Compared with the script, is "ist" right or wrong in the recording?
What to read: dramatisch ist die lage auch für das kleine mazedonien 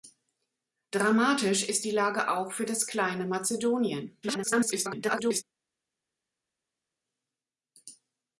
right